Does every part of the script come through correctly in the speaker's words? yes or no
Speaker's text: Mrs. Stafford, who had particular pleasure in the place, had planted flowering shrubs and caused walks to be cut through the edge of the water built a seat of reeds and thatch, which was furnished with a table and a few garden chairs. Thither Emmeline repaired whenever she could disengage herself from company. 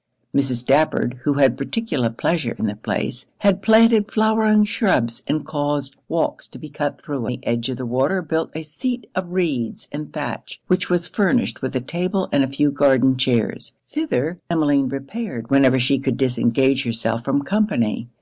yes